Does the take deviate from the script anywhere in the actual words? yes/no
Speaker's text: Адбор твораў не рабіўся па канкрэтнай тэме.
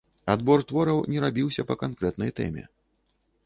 no